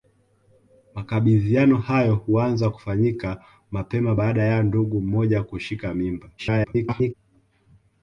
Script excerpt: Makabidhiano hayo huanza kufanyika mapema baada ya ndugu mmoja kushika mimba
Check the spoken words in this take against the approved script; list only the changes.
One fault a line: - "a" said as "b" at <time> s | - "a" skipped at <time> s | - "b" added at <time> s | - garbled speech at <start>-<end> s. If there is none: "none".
- garbled speech at 6.4-7.1 s